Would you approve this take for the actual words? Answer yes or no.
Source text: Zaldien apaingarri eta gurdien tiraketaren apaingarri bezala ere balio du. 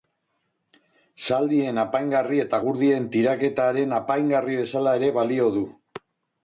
yes